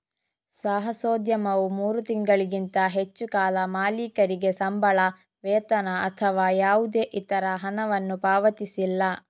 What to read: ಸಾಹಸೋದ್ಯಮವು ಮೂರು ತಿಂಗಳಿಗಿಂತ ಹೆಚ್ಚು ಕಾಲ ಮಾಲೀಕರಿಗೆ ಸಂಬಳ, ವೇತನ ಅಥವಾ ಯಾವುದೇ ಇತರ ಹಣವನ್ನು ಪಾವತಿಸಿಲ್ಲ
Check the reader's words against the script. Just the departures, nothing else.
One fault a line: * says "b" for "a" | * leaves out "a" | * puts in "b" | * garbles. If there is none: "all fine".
all fine